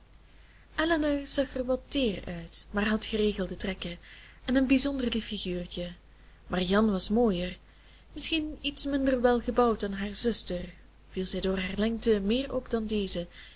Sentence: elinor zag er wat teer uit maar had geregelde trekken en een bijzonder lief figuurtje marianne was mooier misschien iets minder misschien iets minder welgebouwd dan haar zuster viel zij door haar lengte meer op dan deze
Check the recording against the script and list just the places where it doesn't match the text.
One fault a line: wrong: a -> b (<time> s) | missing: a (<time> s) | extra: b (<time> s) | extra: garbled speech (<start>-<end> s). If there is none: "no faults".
missing: misschien iets minder (9.2 s)